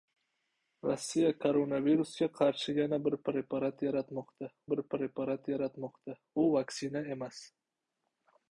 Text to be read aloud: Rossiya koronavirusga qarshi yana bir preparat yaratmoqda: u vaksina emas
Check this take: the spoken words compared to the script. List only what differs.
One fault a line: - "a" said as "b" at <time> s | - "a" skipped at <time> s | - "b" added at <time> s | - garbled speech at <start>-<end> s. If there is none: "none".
- "bir preparat yaratmoqda" added at 4.7 s